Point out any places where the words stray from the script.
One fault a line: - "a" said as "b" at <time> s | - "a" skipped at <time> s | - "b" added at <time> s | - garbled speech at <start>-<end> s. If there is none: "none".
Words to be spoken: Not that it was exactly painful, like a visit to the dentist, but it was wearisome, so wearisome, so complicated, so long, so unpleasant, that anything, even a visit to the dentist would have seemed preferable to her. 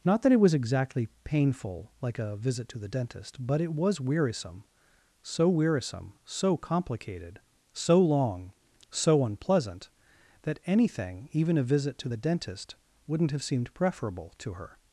- "would" said as "wouldn't" at 13.1 s